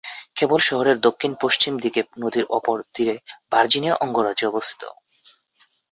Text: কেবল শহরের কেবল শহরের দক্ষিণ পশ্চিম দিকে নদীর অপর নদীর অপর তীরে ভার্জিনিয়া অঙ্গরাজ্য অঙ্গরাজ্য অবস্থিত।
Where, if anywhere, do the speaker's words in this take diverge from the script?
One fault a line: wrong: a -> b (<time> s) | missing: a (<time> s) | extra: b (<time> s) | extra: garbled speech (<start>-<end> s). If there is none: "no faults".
missing: কেবল শহরের (1.0 s)
missing: নদীর অপর (2.8 s)
missing: অঙ্গরাজ্য (4.4 s)